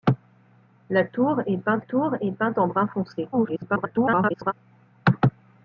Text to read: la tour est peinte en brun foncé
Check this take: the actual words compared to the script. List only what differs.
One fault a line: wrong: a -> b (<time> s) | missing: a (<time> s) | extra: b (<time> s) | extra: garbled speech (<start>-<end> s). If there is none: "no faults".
extra: tour est peinte (1.8 s)
extra: garbled speech (3.3-4.5 s)